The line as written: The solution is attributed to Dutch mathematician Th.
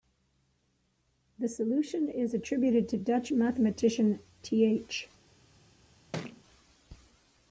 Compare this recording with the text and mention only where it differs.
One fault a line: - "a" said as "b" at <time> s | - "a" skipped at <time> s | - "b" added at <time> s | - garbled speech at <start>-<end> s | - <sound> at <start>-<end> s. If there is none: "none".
- thud at 6.1-6.4 s